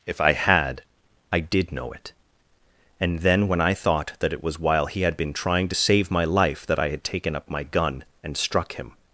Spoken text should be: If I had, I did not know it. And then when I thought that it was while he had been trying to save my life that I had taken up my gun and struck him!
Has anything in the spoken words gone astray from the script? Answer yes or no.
yes